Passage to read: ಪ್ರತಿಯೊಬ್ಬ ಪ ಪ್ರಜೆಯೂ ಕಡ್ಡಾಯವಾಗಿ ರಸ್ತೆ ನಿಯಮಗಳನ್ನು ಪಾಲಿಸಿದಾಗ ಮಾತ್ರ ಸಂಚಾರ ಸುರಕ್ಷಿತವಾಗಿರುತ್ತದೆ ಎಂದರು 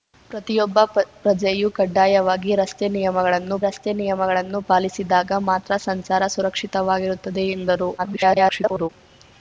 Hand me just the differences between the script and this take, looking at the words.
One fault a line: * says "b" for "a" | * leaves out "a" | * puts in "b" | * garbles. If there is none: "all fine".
* puts in "ರಸ್ತೆ ನಿಯಮಗಳನ್ನು"
* garbles